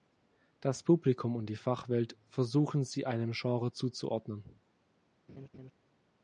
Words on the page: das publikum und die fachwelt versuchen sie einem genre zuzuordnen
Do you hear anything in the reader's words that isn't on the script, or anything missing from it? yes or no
no